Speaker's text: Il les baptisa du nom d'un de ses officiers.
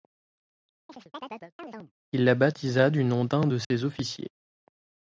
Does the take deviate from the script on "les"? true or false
true